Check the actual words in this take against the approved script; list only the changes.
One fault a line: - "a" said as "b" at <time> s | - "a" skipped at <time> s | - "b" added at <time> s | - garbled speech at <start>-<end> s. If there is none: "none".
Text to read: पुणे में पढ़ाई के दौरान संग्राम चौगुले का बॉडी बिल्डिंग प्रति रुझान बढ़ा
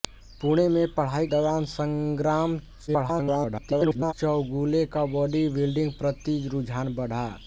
- "के" skipped at 1.3 s
- garbled speech at 2.9-4.1 s